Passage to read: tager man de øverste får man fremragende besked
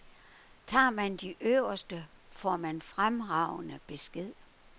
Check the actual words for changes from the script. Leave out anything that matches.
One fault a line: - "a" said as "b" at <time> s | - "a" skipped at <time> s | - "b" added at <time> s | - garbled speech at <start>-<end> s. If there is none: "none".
none